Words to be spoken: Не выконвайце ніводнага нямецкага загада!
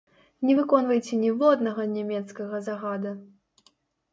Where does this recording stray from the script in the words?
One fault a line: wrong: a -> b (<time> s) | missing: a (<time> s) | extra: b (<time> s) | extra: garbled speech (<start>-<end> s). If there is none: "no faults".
no faults